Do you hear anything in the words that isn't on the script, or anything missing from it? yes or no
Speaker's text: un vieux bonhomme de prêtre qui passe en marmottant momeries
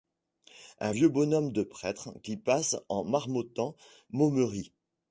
no